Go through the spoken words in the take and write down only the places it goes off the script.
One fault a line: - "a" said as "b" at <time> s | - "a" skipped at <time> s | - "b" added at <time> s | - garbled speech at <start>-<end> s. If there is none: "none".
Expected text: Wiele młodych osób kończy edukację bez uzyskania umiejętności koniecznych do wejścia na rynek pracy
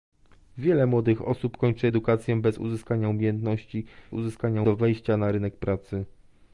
- "koniecznych" said as "uzyskania" at 4.1 s